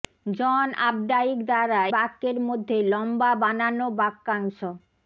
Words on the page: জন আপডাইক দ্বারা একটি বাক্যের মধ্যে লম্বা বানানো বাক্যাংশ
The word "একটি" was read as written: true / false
false